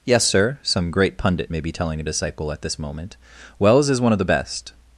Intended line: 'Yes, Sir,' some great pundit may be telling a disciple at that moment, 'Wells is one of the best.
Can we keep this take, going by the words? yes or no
no